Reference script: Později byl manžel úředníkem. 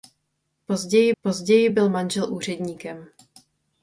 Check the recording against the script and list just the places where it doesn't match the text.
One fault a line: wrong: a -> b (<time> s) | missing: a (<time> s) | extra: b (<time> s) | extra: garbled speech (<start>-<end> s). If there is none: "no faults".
extra: později (1.2 s)